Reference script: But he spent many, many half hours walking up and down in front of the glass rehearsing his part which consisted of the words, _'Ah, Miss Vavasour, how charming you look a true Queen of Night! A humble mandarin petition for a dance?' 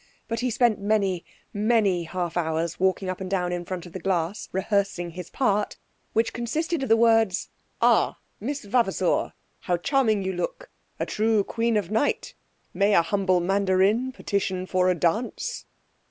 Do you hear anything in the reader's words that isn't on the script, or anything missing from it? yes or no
yes